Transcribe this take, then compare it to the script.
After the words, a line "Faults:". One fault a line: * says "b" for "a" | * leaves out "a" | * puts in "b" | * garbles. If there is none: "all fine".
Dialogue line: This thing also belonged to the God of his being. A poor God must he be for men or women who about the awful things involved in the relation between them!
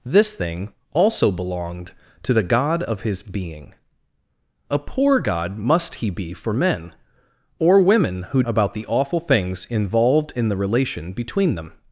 This thing also belonged to the God of his being. A poor God must he be for men or women who about the awful things involved in the relation between them!
Faults:
all fine